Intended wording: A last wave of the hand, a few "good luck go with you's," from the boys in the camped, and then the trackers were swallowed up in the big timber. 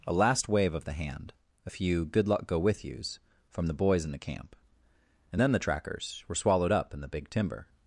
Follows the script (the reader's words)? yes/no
no